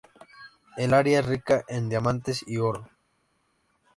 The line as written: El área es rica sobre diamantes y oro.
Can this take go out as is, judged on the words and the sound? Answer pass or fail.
fail